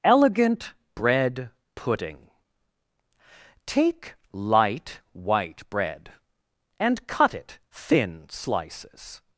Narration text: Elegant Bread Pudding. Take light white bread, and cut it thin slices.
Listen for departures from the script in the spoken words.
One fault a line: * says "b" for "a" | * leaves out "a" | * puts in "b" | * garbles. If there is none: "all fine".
all fine